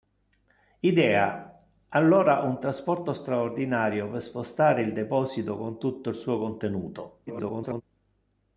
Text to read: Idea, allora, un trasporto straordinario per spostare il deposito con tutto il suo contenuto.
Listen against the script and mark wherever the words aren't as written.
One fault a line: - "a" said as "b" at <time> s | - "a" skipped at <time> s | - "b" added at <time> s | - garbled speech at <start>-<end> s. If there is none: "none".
- garbled speech at 7.3-7.8 s